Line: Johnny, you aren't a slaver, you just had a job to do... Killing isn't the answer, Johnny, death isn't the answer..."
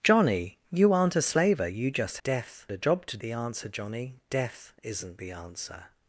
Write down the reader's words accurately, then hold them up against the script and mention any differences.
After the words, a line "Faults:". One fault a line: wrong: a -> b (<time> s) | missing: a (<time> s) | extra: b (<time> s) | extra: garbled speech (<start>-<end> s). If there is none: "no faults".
Johnny, you aren't a slaver, you just death a job to the answer, Johnny, death isn't the answer..."
Faults:
wrong: had -> death (2.2 s)
missing: do Killing isn't (3.2 s)